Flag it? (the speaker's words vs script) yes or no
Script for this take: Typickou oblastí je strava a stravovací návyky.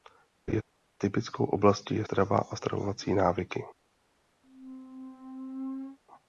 no